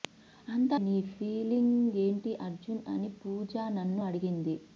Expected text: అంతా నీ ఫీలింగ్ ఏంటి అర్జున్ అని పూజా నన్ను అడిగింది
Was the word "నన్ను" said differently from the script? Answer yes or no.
no